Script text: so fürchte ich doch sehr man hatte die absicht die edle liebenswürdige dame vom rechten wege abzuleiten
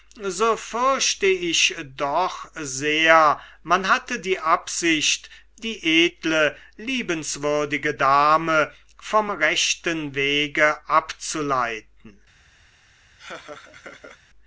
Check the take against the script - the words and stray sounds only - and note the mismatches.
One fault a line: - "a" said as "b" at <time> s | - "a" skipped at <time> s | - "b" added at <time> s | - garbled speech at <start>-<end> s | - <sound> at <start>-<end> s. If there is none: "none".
- laugh at 13.2-14.2 s